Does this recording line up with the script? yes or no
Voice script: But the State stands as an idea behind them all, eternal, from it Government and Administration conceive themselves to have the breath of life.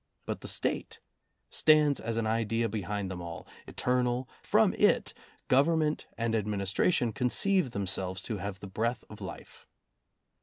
yes